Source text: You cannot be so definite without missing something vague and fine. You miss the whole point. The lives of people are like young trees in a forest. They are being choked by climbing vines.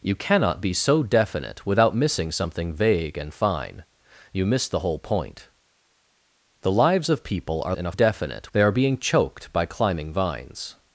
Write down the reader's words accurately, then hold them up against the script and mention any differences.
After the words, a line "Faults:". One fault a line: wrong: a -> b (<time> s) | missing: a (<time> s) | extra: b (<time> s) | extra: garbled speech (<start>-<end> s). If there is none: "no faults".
You cannot be so definite without missing something vague and fine. You miss the whole point. The lives of people are in a definite. They are being choked by climbing vines.
Faults:
missing: like young trees (7.8 s)
wrong: forest -> definite (7.9 s)